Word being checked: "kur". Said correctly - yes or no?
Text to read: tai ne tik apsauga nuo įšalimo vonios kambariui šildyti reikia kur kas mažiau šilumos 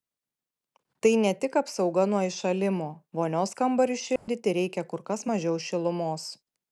yes